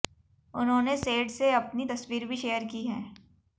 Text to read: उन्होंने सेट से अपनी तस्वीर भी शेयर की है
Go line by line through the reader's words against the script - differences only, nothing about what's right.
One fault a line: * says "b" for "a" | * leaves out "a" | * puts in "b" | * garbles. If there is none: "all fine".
all fine